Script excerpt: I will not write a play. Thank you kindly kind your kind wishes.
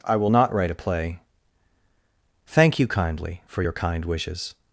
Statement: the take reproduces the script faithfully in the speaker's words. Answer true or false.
false